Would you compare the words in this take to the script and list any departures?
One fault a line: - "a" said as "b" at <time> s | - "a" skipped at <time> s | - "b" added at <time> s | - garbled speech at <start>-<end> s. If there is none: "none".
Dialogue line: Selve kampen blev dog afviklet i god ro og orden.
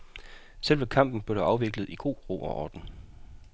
none